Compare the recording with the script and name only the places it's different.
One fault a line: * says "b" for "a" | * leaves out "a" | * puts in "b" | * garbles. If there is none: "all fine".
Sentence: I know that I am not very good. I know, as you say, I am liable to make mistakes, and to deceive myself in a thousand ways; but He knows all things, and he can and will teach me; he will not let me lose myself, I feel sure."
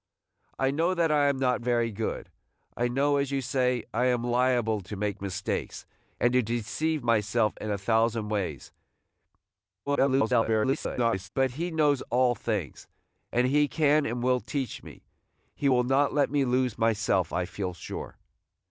* garbles